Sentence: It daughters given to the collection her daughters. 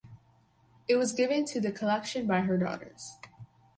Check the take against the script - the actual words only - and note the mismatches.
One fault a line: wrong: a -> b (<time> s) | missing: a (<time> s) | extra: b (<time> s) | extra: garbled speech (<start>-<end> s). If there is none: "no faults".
wrong: daughters -> was (0.9 s)
extra: by (2.2 s)